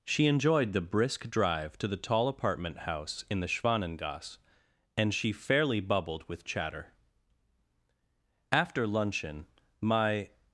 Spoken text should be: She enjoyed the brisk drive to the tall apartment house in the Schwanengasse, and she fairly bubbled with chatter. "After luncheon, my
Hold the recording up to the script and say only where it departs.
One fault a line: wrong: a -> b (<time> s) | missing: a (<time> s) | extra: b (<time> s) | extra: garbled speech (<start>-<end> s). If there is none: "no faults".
no faults